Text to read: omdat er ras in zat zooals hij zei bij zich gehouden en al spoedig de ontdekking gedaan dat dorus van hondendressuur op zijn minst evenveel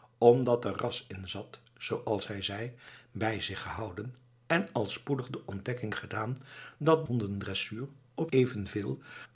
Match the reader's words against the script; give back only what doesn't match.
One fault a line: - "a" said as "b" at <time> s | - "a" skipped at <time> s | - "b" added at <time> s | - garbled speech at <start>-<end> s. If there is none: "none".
- "dorus van" skipped at 7.1 s
- "zijn minst" skipped at 8.3 s